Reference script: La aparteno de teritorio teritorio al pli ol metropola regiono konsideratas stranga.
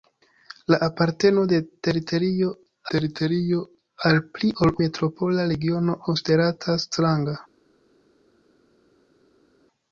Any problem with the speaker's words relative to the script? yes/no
no